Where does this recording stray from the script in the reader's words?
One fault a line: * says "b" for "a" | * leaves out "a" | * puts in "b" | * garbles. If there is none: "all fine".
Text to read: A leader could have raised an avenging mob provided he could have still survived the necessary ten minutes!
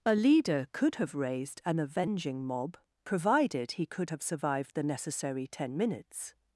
* leaves out "still"